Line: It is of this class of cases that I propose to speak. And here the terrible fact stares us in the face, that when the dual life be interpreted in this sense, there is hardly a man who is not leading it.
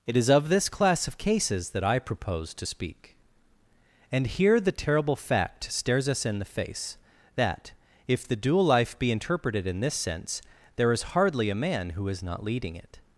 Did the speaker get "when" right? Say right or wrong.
wrong